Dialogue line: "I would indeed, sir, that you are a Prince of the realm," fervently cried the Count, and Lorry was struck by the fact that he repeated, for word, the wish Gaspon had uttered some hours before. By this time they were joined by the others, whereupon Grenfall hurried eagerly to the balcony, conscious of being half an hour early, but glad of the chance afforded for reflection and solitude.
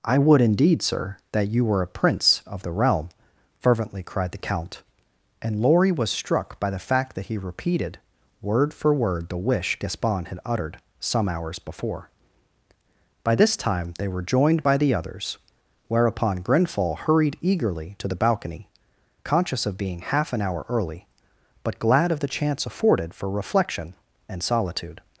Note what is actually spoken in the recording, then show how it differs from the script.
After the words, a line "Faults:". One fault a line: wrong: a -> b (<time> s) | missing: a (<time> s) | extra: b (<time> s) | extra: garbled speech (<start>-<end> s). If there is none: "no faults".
"I would indeed, sir, that you were a Prince of the realm," fervently cried the Count, and Lorry was struck by the fact that he repeated, word for word, the wish Gaspon had uttered some hours before. By this time they were joined by the others, whereupon Grenfall hurried eagerly to the balcony, conscious of being half an hour early, but glad of the chance afforded for reflection and solitude.
Faults:
wrong: are -> were (1.6 s)
extra: word (8.4 s)